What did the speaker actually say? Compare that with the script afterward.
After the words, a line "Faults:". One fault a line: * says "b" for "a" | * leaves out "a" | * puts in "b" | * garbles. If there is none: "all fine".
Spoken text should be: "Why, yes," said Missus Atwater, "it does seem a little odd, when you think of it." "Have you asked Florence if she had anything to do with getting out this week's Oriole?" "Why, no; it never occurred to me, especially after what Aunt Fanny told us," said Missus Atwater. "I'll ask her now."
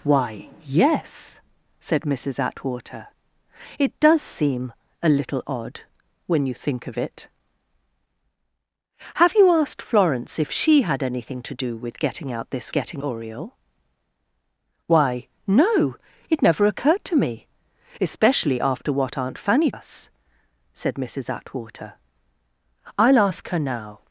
"Why, yes," said Missus Atwater, "it does seem a little odd, when you think of it." "Have you asked Florence if she had anything to do with getting out this getting Oriole?" "Why, no; it never occurred to me, especially after what Aunt Fanny us," said Missus Atwater. "I'll ask her now."
Faults:
* says "getting" for "week's"
* leaves out "told"